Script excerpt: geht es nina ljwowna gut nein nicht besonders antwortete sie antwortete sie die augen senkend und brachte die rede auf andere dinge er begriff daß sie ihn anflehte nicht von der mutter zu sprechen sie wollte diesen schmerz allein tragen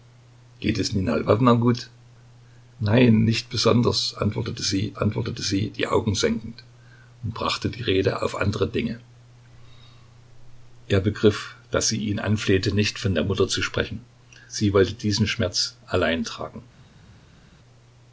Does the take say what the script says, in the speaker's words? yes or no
yes